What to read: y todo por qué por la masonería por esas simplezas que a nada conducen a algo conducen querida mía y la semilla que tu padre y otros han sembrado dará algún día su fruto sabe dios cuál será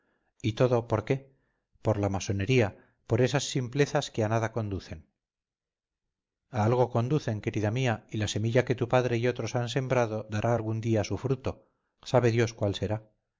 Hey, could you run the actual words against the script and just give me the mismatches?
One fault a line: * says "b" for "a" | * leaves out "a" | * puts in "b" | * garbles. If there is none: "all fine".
all fine